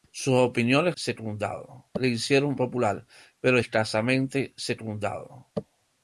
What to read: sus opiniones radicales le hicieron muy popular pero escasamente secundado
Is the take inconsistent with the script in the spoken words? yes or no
yes